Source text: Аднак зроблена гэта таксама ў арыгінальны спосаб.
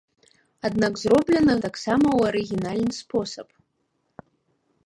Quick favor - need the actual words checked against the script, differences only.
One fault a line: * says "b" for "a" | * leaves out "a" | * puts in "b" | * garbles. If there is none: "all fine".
* leaves out "гэта"